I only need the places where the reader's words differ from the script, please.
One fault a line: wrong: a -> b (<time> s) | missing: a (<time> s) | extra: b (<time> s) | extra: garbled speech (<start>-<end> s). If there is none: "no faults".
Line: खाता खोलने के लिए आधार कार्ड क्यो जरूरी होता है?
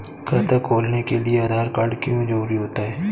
no faults